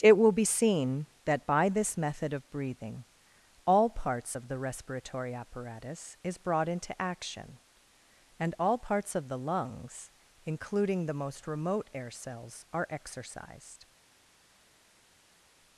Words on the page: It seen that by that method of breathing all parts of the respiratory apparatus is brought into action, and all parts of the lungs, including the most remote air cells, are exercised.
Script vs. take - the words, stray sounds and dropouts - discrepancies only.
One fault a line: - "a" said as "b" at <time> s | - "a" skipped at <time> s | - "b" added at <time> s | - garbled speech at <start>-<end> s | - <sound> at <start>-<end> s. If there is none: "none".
- "will be" added at 0.2 s
- "that" said as "this" at 1.7 s